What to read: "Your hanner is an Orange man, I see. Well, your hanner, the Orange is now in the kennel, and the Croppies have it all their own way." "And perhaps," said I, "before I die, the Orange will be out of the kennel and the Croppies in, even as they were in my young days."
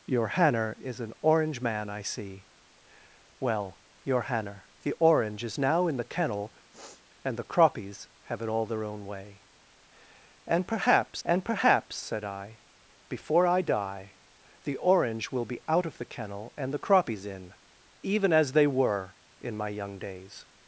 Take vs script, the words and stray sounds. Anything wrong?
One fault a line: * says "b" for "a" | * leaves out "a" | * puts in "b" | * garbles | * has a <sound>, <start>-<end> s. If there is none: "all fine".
* has a sniff, 6.7-7.0 s
* puts in "and perhaps"